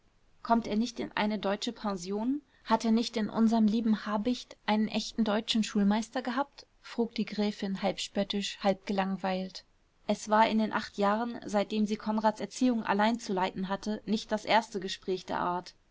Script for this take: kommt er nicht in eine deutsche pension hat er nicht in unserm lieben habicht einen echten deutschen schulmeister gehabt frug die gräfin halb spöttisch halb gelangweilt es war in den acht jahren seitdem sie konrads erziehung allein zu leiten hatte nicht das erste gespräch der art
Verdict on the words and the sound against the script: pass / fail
pass